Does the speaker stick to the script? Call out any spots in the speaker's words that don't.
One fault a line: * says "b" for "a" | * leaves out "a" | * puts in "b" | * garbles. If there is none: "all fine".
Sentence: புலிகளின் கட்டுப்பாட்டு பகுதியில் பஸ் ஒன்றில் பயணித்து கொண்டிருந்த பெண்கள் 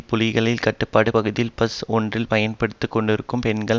all fine